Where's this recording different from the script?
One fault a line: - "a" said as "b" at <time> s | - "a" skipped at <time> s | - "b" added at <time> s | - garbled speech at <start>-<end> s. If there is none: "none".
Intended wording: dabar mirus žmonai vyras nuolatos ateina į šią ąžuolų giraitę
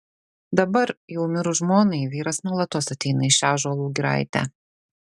- "jau" added at 1.1 s